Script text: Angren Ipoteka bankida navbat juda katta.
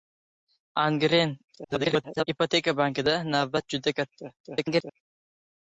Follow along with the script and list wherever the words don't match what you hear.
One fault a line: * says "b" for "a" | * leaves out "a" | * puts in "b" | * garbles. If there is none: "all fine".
* garbles
* garbles